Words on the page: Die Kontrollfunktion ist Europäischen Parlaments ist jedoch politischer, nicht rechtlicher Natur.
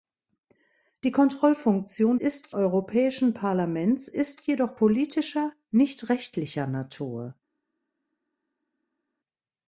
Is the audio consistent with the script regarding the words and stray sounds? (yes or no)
yes